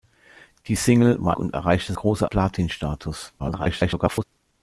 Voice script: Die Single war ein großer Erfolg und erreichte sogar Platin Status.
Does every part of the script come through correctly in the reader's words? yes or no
no